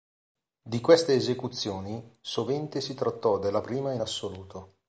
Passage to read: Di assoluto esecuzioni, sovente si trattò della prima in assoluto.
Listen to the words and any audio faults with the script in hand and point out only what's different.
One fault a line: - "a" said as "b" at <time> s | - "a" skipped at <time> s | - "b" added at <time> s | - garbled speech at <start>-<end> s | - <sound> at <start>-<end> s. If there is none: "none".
- "assoluto" said as "queste" at 0.8 s